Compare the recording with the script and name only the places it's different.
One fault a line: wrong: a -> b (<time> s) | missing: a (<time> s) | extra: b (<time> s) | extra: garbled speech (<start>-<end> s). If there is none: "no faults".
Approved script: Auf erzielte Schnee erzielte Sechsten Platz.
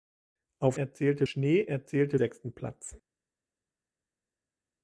no faults